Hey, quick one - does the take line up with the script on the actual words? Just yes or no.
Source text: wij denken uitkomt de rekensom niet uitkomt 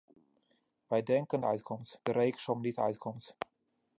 yes